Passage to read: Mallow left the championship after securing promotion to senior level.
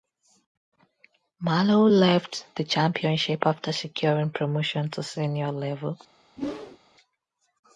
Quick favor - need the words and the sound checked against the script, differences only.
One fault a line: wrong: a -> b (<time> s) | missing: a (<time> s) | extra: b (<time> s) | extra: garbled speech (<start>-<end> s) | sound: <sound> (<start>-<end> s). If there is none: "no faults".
sound: whoosh (6.4-6.8 s)